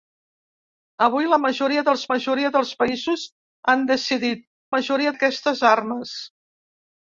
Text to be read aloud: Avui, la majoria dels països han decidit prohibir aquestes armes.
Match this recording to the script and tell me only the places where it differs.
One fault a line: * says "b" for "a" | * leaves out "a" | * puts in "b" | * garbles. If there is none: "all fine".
* puts in "majoria dels"
* says "majoria" for "prohibir"